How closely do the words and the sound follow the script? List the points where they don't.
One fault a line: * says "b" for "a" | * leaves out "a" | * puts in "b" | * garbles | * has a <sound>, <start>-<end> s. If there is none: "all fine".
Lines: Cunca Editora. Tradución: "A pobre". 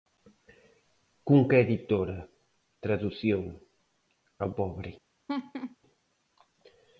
* has a laugh, 5.3-5.8 s